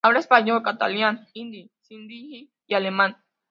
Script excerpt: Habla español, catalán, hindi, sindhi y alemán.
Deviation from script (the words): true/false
false